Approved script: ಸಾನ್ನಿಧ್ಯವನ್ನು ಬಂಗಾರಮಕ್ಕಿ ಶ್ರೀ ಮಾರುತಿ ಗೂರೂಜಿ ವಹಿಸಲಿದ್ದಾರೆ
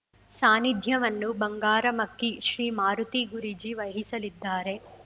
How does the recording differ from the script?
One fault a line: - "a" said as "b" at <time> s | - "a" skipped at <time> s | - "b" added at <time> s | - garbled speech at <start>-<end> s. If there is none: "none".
none